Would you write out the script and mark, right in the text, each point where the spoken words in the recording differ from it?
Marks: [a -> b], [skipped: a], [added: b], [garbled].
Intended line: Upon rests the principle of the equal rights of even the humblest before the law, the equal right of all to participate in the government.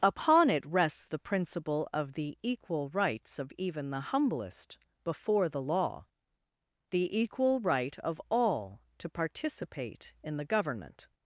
Upon [added: it] rests the principle of the equal rights of even the humblest before the law, the equal right of all to participate in the government.